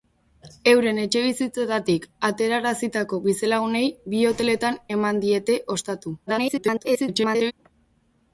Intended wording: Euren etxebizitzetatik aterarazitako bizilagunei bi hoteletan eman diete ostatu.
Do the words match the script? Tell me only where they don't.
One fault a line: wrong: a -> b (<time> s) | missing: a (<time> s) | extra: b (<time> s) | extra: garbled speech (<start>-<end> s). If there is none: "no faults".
extra: garbled speech (6.3-7.5 s)